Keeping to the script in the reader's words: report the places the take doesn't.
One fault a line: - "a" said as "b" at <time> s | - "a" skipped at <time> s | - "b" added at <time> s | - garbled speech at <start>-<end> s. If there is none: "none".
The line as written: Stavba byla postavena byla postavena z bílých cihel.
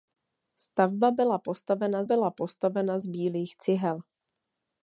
none